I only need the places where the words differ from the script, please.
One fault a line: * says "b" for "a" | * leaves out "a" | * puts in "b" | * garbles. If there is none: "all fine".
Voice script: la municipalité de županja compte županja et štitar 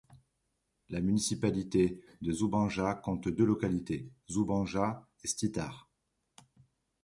* puts in "deux localités"